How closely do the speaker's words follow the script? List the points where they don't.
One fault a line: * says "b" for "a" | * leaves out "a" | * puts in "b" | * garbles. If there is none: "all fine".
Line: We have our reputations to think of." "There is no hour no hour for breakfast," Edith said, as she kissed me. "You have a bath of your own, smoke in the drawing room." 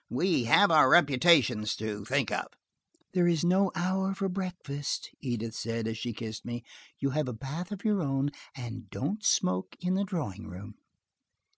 * leaves out "no hour"
* puts in "and don't"